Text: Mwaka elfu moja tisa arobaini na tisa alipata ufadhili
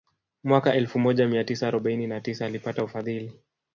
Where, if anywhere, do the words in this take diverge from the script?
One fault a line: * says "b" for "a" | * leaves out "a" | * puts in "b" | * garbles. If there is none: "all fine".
* puts in "mia"